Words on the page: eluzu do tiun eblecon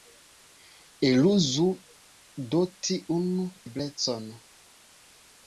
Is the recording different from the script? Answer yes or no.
no